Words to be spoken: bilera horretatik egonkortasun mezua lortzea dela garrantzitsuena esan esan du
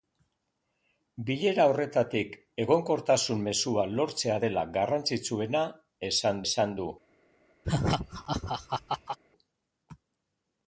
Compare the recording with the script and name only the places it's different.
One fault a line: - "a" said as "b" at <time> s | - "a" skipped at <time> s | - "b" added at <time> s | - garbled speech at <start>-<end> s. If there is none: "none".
none